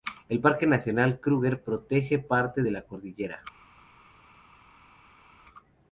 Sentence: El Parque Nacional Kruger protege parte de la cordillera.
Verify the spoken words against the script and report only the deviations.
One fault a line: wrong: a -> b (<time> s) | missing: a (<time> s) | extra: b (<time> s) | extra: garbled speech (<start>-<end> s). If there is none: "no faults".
no faults